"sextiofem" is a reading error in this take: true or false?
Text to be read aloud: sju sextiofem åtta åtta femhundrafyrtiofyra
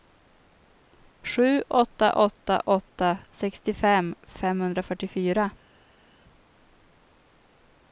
true